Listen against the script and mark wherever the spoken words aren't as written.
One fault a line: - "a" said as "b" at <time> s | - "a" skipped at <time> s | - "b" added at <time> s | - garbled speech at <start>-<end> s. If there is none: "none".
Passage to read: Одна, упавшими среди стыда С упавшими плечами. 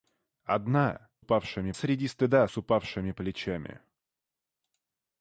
none